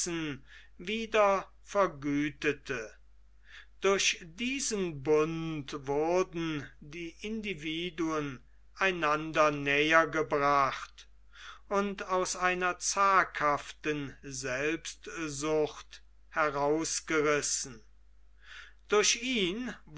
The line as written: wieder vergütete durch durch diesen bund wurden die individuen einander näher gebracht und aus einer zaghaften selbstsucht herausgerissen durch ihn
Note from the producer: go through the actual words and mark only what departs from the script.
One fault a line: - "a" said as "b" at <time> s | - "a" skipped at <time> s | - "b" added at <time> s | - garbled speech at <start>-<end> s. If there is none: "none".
- "durch" skipped at 4.2 s